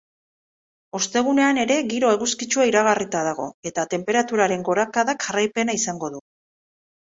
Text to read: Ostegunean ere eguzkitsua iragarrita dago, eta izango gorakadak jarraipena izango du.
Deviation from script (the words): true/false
true